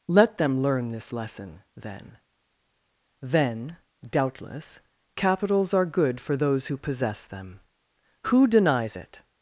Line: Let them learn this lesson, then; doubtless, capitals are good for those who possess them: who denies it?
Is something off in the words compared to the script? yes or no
yes